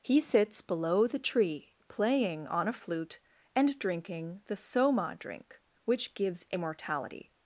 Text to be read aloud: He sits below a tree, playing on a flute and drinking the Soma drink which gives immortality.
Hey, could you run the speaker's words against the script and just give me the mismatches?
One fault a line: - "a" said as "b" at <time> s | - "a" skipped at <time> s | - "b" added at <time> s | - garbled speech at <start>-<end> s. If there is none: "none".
- "a" said as "the" at 1.1 s